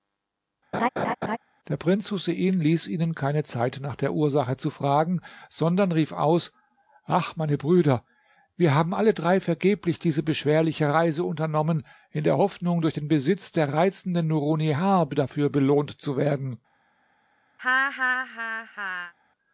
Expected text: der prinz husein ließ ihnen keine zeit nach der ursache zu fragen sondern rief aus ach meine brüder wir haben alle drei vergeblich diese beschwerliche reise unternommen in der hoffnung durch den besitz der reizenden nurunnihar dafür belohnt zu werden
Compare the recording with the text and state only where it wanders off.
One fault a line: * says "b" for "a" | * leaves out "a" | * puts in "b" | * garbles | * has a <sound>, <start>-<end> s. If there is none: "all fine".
* has a laugh, 0.7-1.4 s
* has a laugh, 17.6-19.1 s